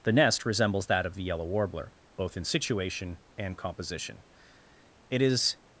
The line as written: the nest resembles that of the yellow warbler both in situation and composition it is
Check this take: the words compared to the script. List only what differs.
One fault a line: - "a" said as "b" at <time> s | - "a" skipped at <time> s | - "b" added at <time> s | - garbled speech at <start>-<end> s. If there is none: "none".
none